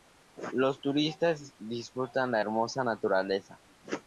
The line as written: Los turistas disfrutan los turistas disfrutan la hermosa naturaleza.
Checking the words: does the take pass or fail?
fail